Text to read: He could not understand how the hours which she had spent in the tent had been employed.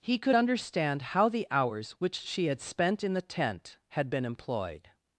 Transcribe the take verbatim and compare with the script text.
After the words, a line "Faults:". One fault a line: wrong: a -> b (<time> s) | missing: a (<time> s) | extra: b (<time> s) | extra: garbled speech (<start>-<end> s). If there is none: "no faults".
He could understand how the hours which she had spent in the tent had been employed.
Faults:
missing: not (0.4 s)